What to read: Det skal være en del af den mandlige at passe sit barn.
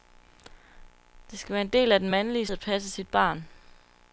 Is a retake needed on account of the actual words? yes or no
no